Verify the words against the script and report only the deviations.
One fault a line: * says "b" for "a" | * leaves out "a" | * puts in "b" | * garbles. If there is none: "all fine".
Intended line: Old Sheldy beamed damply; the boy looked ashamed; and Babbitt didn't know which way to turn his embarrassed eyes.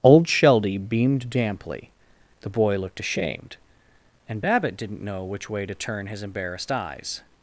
all fine